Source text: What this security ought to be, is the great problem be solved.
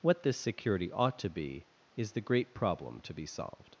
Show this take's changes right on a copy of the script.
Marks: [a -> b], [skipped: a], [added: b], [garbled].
What this security ought to be, is the great problem [added: to] be solved.